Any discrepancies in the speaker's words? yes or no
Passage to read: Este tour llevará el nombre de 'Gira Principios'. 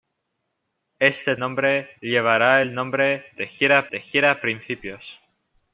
yes